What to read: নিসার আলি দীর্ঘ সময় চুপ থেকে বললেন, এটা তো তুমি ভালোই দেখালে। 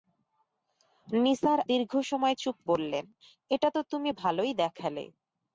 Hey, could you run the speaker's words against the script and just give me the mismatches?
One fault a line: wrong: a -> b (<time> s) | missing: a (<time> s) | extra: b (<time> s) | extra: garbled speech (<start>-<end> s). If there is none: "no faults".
missing: আলি (1.6 s)
missing: থেকে (2.6 s)